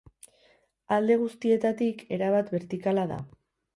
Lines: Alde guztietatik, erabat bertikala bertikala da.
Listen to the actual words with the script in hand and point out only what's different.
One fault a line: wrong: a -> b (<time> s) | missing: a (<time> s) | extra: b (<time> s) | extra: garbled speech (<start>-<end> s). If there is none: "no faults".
missing: bertikala (3.1 s)